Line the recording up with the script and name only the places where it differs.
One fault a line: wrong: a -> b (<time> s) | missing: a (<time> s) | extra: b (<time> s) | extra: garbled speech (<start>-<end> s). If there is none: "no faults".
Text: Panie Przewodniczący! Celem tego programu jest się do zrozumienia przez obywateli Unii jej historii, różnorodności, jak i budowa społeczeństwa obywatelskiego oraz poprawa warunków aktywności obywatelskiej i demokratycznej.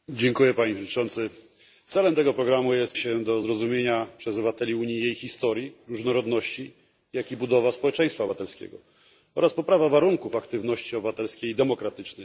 no faults